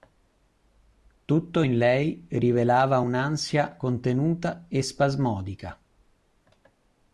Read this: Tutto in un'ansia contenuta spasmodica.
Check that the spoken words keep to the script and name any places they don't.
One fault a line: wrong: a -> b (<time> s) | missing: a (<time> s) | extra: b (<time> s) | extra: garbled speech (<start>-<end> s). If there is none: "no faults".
extra: lei rivelava (1.8 s)
extra: e (4.7 s)